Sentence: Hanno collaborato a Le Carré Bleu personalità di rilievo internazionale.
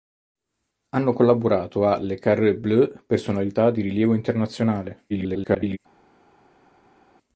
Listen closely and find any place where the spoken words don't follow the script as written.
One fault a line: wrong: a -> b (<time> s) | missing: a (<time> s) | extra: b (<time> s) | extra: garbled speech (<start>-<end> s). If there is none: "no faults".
extra: garbled speech (5.1-5.8 s)